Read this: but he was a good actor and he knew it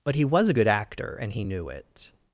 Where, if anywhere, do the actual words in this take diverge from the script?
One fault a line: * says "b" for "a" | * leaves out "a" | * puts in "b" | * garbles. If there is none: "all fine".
all fine